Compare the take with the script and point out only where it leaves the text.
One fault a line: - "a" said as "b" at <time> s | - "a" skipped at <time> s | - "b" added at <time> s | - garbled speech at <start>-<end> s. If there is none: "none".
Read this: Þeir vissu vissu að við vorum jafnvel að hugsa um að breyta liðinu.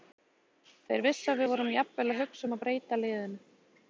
- "vissu" skipped at 1.3 s